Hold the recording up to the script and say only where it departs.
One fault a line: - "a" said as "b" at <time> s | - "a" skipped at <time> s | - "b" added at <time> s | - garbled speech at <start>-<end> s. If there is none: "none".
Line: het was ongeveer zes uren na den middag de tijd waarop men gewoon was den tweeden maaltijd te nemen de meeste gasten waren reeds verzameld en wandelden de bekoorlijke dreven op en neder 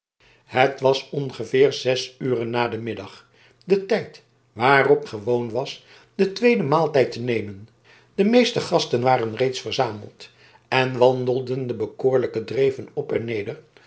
- "men" skipped at 5.0 s